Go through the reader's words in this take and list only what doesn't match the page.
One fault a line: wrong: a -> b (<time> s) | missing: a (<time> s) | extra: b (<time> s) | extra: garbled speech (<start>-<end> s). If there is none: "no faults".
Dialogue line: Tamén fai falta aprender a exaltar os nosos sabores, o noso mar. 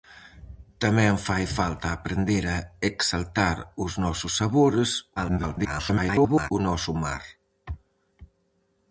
extra: garbled speech (5.2-6.5 s)